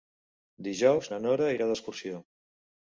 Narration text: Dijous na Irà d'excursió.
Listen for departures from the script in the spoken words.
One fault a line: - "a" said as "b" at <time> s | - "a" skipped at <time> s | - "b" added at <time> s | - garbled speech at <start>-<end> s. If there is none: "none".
- "Nora" added at 1.3 s